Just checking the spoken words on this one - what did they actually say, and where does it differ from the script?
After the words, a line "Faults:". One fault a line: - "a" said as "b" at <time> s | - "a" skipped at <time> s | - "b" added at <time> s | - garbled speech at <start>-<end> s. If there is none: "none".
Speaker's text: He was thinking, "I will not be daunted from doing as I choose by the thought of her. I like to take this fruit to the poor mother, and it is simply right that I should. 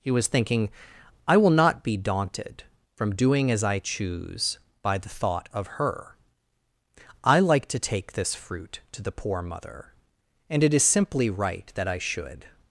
He was thinking, "I will not be daunted from doing as I choose by the thought of her. I like to take this fruit to the poor mother, and it is simply right that I should.
Faults:
none